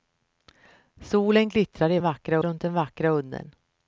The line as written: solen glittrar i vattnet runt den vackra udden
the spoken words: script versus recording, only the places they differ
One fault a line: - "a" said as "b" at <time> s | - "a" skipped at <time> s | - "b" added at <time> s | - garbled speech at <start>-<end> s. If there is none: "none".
- "vattnet" said as "vackra" at 2.0 s